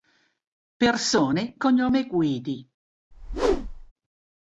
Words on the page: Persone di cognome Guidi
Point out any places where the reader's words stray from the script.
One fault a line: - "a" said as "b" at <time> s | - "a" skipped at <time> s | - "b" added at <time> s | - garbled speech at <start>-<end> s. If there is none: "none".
- "di" skipped at 1.6 s